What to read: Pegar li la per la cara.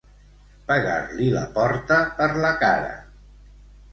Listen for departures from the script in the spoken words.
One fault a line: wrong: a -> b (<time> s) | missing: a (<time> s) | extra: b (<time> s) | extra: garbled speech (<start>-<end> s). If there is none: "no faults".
extra: porta (1.6 s)